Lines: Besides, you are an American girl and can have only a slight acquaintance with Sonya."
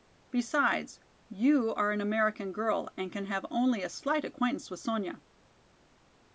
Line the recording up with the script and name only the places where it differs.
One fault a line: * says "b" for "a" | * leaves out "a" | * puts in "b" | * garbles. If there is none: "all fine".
all fine